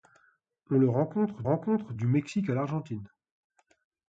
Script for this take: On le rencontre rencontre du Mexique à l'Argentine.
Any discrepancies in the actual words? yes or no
no